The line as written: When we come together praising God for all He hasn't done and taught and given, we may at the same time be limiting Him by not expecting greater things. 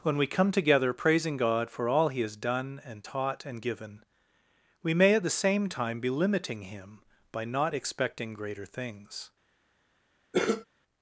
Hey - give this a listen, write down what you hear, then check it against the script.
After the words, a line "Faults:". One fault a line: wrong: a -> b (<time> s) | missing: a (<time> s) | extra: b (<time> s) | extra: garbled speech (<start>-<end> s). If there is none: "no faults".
When we come together praising God for all He has done and taught and given, we may at the same time be limiting Him by not expecting greater things.
Faults:
wrong: hasn't -> has (2.2 s)